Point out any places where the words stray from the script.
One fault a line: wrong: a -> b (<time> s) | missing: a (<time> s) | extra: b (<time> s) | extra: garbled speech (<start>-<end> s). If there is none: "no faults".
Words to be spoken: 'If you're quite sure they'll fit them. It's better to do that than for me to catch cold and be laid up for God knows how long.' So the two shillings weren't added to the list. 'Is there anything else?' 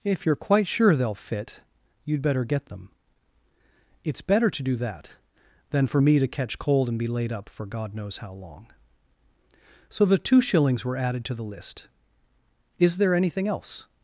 extra: you'd better get (2.0 s)
wrong: weren't -> were (10.8 s)